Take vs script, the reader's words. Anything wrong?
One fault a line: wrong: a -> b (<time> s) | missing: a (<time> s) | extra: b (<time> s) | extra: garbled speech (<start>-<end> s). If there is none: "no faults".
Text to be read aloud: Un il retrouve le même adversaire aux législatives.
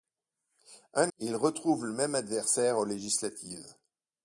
no faults